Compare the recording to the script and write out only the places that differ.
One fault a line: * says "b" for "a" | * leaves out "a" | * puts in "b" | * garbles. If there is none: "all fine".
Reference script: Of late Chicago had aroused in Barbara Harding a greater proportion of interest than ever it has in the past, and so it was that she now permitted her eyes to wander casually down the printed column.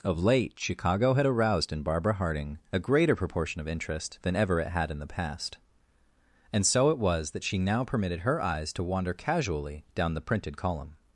* says "had" for "has"